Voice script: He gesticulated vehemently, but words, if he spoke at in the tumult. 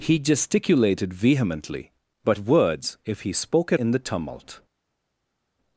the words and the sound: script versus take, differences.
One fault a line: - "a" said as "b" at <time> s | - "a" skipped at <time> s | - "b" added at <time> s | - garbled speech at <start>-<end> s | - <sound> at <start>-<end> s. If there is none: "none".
none